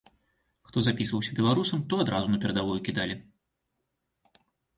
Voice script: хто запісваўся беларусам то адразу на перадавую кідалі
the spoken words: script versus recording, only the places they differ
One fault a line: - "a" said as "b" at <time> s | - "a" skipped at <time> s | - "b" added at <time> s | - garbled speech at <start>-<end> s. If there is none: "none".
none